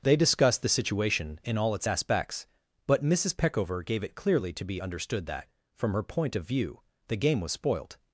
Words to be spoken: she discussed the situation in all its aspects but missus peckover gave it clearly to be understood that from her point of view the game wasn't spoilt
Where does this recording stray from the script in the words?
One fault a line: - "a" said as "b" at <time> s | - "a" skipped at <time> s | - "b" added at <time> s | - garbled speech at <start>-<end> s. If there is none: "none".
- "she" said as "they" at 0.0 s
- "wasn't" said as "was" at 7.4 s